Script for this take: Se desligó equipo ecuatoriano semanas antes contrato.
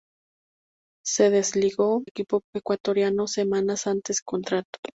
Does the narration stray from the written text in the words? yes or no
no